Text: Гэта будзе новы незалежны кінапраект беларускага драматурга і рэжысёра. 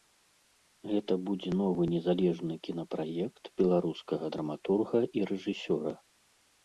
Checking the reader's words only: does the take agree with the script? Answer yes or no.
yes